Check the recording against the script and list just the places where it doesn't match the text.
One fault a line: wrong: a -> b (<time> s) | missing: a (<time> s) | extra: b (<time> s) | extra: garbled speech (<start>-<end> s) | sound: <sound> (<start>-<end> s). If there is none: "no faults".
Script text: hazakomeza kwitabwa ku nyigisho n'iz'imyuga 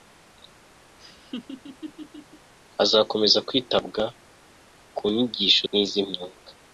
sound: laugh (1.0-2.5 s)